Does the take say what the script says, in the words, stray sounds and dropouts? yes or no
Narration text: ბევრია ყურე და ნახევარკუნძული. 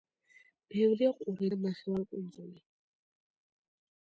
yes